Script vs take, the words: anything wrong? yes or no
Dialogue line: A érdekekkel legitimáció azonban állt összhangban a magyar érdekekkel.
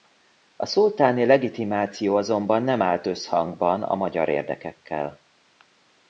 yes